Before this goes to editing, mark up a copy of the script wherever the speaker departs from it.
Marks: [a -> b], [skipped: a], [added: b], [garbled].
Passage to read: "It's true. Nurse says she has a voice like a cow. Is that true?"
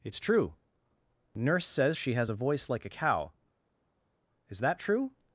"It's true. Nurse says she has a voice like a cow. Is that true?"